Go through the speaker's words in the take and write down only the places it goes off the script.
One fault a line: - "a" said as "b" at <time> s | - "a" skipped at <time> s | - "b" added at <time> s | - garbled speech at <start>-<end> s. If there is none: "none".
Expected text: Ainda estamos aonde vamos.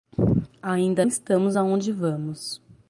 none